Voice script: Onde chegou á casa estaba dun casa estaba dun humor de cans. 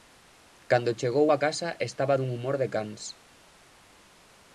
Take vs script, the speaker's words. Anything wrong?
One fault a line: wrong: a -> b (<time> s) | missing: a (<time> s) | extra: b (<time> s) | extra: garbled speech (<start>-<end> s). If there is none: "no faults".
wrong: Onde -> Cando (0.7 s)
missing: casa estaba dun (2.3 s)